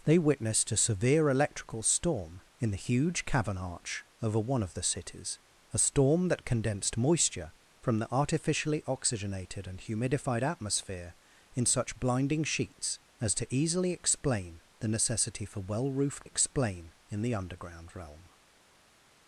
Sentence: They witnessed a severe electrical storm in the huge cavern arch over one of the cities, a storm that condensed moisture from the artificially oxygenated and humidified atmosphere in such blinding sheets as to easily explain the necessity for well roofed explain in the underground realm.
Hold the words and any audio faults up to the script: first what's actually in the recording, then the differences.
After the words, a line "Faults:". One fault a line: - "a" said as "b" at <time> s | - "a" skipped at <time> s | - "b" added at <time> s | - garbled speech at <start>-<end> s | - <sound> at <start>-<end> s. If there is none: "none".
They witnessed a severe electrical storm in the huge cavern arch over one of the cities, a storm that condensed moisture from the artificially oxygenated and humidified atmosphere in such blinding sheets as to easily explain the necessity for well roofed explain in the underground realm.
Faults:
none